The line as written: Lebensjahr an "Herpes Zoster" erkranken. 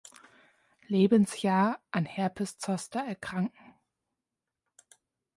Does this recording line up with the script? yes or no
yes